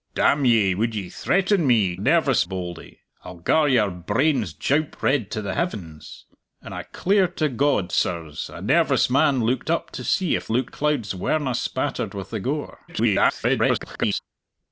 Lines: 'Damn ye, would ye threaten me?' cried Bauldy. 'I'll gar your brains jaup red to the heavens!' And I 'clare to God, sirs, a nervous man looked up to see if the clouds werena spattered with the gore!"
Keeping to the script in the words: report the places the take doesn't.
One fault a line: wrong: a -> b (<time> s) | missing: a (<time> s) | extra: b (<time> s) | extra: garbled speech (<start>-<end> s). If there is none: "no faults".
wrong: cried -> nervous (2.0 s)
wrong: the -> looked (10.5 s)
extra: garbled speech (12.9-14.2 s)